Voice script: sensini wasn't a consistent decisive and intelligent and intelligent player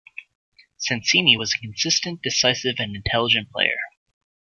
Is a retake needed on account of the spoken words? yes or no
yes